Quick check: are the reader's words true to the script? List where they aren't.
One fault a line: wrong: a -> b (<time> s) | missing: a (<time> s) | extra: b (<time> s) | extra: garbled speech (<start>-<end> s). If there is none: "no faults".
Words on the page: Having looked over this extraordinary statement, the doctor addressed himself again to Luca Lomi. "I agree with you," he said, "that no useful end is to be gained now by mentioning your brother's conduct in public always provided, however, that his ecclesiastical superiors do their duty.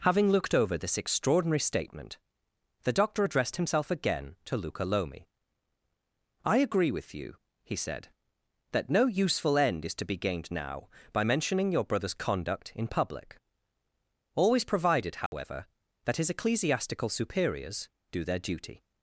no faults